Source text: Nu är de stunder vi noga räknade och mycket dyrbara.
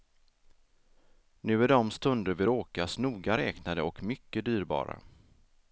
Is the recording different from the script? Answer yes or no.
yes